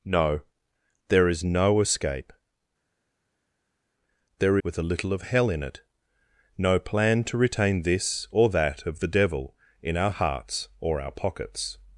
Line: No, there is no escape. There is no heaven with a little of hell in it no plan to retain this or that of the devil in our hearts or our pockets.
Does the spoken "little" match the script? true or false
true